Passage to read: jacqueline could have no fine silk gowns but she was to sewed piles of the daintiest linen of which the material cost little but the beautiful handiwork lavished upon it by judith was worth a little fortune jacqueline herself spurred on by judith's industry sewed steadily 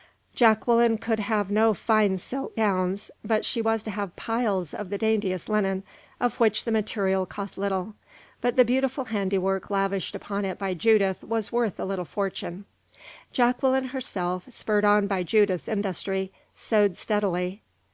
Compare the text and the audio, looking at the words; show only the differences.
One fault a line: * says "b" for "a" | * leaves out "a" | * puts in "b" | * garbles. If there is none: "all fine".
* says "have" for "sewed"